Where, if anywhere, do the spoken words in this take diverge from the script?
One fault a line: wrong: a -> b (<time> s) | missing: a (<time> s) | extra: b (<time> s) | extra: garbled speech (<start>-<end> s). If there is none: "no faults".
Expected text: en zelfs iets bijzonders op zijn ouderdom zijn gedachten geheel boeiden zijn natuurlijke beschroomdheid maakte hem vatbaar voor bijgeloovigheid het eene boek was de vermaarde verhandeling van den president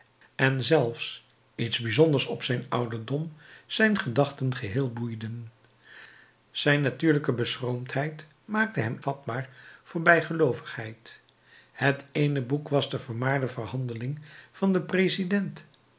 no faults